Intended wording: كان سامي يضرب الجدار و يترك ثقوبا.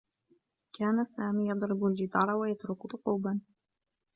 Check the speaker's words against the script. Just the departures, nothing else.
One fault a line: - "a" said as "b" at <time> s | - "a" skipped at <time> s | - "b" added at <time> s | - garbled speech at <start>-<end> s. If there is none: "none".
none